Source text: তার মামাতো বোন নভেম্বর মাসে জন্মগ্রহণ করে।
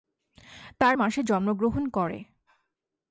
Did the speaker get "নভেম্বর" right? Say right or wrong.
wrong